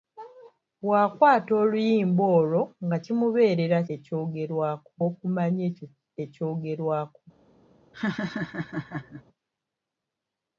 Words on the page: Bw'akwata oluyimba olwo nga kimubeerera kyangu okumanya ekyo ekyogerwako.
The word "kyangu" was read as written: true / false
false